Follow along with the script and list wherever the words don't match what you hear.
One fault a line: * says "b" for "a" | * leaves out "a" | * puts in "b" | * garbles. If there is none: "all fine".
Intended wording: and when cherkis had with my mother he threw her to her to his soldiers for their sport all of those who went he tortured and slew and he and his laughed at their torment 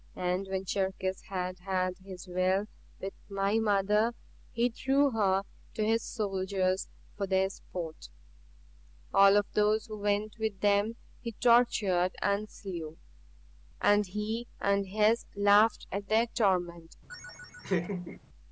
* puts in "had his will"
* leaves out "her to"
* puts in "with them"